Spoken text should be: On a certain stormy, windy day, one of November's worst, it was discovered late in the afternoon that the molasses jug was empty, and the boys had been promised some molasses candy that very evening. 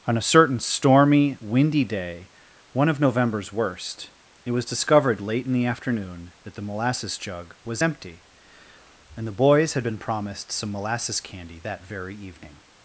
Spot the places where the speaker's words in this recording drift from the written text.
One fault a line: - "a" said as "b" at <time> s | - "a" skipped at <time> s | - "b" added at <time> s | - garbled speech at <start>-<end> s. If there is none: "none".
none